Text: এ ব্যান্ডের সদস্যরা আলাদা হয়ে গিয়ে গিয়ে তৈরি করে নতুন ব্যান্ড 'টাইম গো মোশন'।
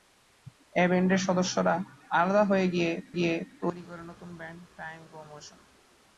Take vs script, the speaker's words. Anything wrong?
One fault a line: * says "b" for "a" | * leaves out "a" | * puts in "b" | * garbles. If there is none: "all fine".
all fine